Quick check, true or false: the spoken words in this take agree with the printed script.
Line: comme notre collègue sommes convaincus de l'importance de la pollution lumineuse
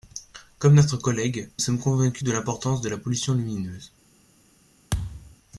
true